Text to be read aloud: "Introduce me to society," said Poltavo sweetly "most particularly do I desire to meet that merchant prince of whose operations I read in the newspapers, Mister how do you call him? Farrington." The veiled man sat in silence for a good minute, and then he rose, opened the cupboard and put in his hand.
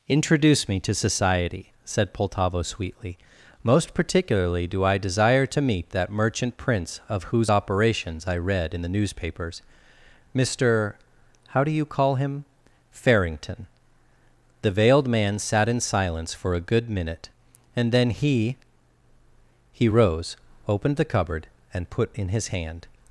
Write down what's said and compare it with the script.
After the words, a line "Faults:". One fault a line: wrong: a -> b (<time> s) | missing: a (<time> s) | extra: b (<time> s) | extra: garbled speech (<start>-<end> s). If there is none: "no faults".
"Introduce me to society," said Poltavo sweetly "most particularly do I desire to meet that merchant prince of whose operations I read in the newspapers, Mister how do you call him? Farrington." The veiled man sat in silence for a good minute, and then he he rose, opened the cupboard and put in his hand.
Faults:
extra: he (19.7 s)